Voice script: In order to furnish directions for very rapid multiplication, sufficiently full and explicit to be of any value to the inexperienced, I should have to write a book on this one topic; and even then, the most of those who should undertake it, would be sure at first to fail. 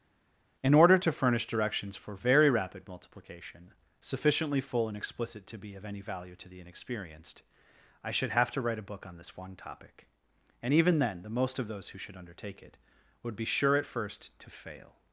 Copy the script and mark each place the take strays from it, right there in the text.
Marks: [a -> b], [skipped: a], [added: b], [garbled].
In order to furnish directions for very rapid multiplication, sufficiently full and explicit to be of any value to the inexperienced, I should have to write a book on this one topic; and even then, the most of those who should undertake it, would be sure at first to fail.